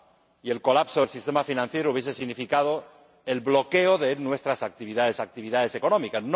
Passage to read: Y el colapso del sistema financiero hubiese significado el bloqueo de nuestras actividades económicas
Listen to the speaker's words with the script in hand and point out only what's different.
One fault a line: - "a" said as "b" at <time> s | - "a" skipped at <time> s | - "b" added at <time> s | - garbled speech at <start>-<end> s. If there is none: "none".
- "actividades" added at 5.2 s